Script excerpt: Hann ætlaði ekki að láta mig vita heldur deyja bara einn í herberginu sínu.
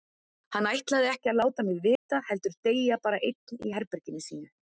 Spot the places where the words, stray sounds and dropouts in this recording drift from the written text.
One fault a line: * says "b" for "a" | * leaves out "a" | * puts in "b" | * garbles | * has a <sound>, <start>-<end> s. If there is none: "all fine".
* has a dropout, 2.0-2.1 s